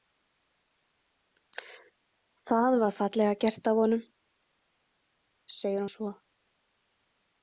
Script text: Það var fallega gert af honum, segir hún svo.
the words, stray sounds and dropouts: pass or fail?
pass